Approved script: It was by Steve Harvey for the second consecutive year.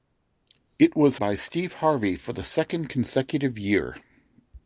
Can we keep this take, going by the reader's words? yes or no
yes